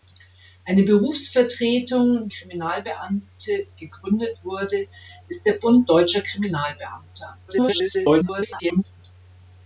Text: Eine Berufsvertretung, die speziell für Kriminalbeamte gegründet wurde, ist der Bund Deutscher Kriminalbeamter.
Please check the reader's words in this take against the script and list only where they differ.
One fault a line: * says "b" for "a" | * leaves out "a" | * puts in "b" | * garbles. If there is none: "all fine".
* leaves out "die speziell für"
* garbles